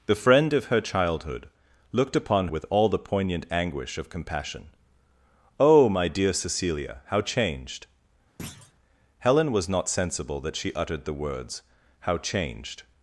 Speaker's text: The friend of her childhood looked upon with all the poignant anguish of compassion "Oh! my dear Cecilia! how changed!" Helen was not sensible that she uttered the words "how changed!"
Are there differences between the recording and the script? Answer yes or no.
no